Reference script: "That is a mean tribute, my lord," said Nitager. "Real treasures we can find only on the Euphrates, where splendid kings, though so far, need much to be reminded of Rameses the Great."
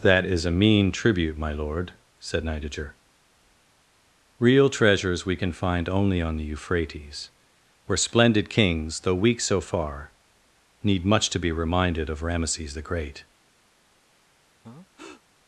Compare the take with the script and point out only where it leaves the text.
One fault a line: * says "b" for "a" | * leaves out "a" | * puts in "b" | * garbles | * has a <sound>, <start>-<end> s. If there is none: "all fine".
* puts in "weak"
* has a breath, 14.6-15.2 s